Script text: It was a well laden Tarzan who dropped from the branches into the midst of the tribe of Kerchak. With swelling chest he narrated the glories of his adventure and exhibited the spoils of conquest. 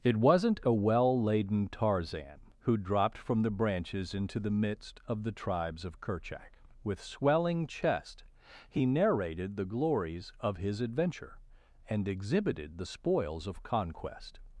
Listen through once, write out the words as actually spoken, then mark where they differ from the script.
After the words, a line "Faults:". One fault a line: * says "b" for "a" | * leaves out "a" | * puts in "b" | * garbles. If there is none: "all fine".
It wasn't a well laden Tarzan who dropped from the branches into the midst of the tribes of Kerchak. With swelling chest he narrated the glories of his adventure and exhibited the spoils of conquest.
Faults:
* says "wasn't" for "was"
* says "tribes" for "tribe"